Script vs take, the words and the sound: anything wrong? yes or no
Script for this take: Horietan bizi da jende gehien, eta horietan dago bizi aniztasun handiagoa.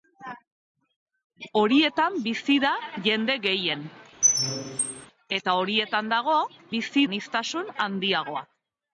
yes